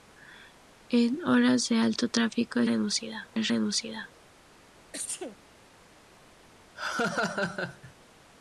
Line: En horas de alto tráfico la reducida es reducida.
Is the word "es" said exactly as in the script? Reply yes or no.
yes